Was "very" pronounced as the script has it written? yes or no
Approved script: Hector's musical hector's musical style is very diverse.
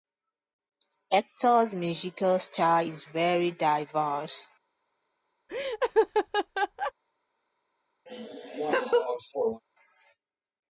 yes